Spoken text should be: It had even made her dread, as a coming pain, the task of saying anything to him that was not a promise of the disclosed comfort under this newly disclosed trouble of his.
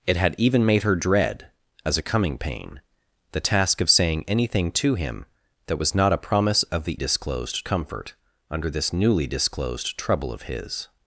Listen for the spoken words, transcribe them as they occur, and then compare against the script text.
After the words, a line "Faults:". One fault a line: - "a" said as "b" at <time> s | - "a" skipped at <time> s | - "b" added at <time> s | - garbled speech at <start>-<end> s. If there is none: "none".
It had even made her dread, as a coming pain, the task of saying anything to him that was not a promise of the disclosed comfort under this newly disclosed trouble of his.
Faults:
none